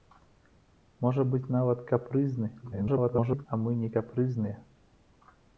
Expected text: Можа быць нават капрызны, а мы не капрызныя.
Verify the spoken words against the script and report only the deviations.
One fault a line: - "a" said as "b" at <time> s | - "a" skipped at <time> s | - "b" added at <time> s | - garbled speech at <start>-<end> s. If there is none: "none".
- garbled speech at 2.6-3.5 s